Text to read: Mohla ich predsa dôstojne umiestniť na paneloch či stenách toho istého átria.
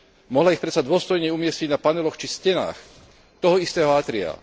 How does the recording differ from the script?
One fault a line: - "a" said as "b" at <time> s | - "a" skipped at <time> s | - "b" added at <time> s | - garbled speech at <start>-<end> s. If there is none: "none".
none